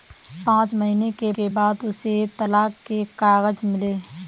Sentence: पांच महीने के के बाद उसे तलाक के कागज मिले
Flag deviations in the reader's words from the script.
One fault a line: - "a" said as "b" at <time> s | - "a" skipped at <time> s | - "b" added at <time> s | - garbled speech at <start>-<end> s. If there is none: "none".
none